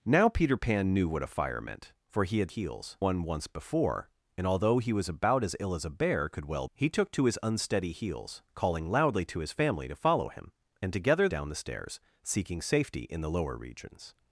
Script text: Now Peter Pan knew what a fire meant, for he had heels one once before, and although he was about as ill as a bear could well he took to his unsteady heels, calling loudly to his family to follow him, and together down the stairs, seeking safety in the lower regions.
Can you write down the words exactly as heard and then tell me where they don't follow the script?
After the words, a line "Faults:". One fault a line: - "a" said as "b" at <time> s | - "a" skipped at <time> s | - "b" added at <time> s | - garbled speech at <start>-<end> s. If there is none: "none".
Now Peter Pan knew what a fire meant, for he had heels one once before, and although he was about as ill as a bear could well he took to his unsteady heels, calling loudly to his family to follow him, and together down the stairs, seeking safety in the lower regions.
Faults:
none